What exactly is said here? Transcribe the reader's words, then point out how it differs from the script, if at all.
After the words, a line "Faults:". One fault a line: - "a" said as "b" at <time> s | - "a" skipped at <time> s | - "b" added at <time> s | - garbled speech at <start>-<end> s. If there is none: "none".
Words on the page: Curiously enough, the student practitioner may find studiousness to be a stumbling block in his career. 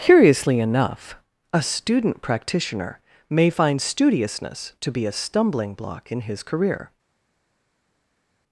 Curiously enough, a student practitioner may find studiousness to be a stumbling block in his career.
Faults:
- "the" said as "a" at 1.5 s